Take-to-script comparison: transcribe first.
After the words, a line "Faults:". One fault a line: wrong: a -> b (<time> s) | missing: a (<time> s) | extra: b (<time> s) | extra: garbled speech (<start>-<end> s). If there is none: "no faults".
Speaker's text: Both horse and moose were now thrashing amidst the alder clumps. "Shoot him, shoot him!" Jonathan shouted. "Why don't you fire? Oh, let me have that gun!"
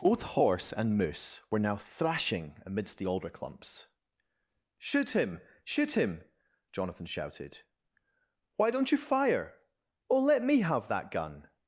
Both horse and moose were now thrashing amidst the alder clumps. "Shoot him, shoot him!" Jonathan shouted. "Why don't you fire? Oh, let me have that gun!"
Faults:
no faults